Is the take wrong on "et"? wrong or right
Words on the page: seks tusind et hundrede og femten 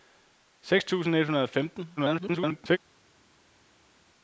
right